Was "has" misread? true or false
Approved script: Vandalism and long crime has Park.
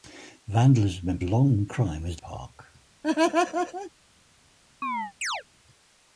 false